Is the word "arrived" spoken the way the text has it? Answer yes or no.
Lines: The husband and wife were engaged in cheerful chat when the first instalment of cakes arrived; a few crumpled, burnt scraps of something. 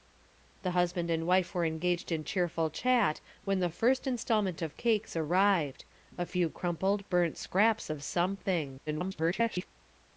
yes